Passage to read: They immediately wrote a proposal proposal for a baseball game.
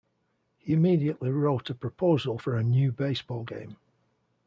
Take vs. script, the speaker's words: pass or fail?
fail